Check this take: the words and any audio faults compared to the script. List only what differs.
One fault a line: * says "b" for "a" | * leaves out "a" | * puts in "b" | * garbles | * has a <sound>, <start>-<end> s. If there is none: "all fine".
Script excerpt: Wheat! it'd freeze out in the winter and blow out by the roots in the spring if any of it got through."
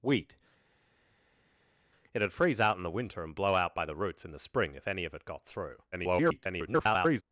* garbles